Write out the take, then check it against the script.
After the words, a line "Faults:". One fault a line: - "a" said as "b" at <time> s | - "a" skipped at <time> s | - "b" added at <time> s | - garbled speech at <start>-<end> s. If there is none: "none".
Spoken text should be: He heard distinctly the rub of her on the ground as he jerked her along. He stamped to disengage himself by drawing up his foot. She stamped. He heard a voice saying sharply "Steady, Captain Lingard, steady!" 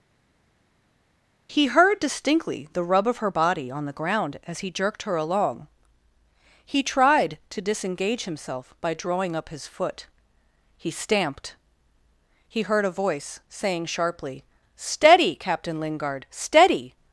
He heard distinctly the rub of her body on the ground as he jerked her along. He tried to disengage himself by drawing up his foot. He stamped. He heard a voice saying sharply "Steady, Captain Lingard, steady!"
Faults:
- "body" added at 3.3 s
- "stamped" said as "tried" at 6.8 s
- "She" said as "He" at 10.8 s